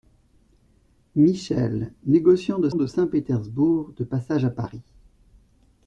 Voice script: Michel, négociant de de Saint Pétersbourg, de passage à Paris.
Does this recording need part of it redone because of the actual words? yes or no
no